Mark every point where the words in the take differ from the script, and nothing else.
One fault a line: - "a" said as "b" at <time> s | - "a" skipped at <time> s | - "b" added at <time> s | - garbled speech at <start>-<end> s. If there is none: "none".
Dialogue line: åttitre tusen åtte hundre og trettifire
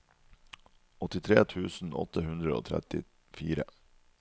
none